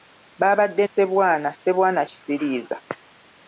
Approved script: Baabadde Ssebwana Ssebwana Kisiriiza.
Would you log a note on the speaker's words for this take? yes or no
no